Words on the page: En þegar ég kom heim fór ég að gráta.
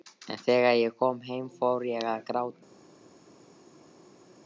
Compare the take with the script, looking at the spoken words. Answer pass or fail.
pass